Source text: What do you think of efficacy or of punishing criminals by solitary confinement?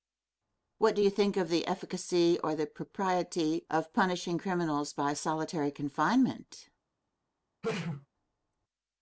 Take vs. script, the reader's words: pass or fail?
fail